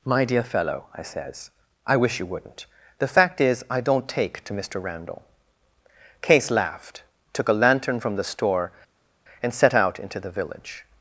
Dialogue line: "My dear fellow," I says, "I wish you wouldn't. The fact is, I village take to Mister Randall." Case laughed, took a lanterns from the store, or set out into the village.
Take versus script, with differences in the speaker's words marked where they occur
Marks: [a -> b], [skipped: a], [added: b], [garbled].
"My dear fellow," I says, "I wish you wouldn't. The fact is, I [village -> don't] take to Mister Randall." Case laughed, took a [lanterns -> lantern] from the store, [or -> and] set out into the village.